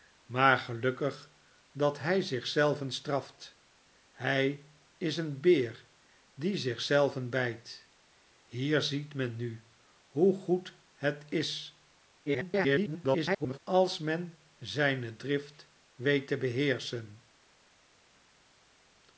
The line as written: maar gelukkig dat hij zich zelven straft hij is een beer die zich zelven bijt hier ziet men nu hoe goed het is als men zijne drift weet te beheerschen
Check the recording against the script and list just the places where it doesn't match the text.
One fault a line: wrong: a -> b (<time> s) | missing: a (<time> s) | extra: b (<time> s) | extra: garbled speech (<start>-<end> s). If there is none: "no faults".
extra: garbled speech (12.3-13.6 s)